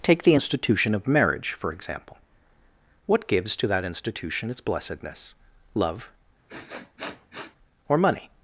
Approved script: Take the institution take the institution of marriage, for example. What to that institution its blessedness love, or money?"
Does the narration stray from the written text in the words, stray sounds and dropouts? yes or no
yes